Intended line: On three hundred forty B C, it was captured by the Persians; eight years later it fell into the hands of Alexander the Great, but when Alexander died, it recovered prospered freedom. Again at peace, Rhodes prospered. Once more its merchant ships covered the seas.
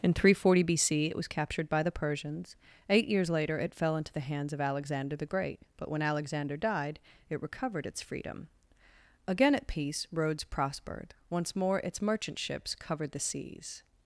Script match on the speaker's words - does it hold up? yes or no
no